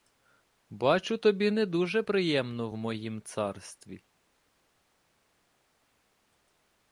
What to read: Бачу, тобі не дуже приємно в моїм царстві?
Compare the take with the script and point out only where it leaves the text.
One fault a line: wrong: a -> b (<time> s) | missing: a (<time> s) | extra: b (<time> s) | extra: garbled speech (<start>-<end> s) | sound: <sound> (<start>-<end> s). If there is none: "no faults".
no faults